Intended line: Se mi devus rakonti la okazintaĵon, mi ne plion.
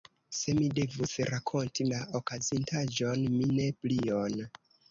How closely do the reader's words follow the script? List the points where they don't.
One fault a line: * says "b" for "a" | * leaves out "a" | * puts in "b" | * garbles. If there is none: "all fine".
all fine